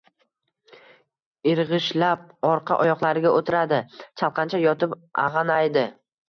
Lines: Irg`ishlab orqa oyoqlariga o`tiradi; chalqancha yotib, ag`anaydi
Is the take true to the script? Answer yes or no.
yes